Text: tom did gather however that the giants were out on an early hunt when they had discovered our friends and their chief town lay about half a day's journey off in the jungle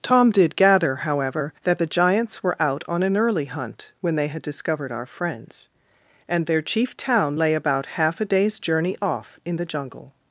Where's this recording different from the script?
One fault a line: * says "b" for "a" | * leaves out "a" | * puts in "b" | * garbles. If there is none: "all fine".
all fine